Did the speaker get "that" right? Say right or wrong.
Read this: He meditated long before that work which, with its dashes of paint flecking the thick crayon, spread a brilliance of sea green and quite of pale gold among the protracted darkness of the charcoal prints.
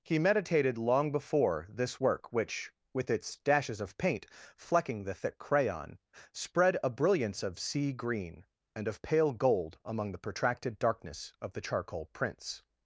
wrong